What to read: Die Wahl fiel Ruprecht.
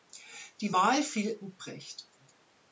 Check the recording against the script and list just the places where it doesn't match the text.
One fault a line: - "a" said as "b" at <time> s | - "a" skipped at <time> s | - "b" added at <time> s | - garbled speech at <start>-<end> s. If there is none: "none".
none